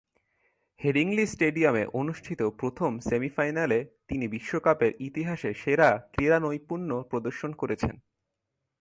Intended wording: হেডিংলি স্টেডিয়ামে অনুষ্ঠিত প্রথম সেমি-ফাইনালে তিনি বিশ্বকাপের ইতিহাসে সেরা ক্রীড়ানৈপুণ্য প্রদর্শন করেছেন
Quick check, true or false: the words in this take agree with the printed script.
true